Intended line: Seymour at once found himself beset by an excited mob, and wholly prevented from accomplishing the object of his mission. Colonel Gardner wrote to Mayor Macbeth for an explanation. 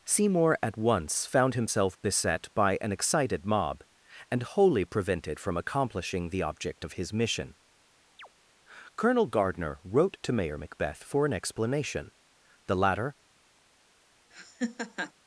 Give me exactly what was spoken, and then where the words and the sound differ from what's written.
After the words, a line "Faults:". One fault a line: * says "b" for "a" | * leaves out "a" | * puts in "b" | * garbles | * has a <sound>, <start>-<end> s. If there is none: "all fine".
Seymour at once found himself beset by an excited mob, and wholly prevented from accomplishing the object of his mission. Colonel Gardner wrote to Mayor Macbeth for an explanation. The latter
Faults:
* has a chirp, 8.2-8.3 s
* puts in "The latter"
* has a laugh, 14.3-15.1 s